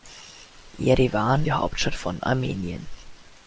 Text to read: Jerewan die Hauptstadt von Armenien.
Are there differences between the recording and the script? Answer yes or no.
no